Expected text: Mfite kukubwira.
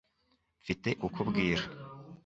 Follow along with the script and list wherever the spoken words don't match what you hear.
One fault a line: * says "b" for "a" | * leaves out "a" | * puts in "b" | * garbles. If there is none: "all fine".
all fine